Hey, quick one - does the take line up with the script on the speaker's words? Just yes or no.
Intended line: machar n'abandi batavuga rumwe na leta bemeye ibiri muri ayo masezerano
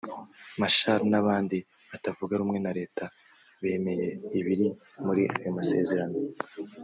yes